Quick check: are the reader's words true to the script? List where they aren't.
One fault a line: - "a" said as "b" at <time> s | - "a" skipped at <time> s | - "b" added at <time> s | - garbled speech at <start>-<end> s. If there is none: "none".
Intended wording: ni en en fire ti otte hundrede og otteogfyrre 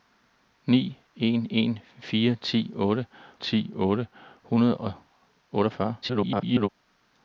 - "ti otte" added at 3.3 s
- garbled speech at 6.0-6.7 s